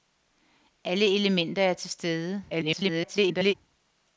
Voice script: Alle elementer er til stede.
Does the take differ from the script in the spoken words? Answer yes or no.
yes